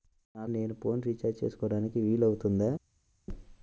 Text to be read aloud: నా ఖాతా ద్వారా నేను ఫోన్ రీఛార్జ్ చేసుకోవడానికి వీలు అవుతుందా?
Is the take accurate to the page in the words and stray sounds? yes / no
no